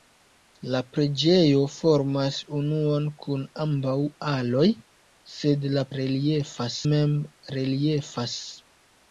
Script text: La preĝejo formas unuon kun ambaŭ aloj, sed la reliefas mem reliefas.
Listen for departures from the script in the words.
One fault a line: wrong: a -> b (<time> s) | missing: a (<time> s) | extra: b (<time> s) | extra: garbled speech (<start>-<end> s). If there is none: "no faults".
no faults